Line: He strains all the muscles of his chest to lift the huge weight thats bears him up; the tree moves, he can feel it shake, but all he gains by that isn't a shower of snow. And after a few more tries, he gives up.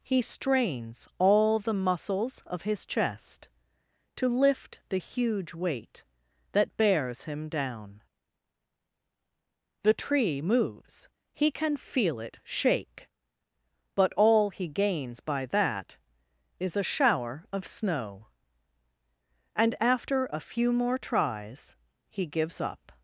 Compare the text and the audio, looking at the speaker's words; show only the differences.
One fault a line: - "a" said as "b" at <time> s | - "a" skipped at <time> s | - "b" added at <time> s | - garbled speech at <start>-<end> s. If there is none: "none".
- "thats" said as "that" at 6.5 s
- "up" said as "down" at 7.5 s
- "isn't" said as "is" at 16.6 s